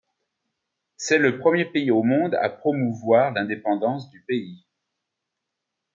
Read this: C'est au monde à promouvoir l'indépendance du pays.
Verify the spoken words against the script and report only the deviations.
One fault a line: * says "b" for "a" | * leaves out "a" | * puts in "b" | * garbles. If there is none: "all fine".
* puts in "le premier pays"